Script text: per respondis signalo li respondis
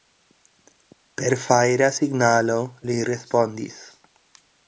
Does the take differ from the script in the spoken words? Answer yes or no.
yes